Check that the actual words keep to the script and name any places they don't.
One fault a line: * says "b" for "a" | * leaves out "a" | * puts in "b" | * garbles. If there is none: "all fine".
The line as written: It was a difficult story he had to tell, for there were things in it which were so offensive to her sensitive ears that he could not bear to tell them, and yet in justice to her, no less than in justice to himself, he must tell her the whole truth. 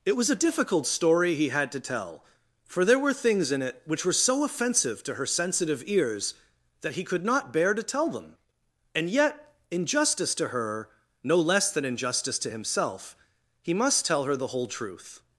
all fine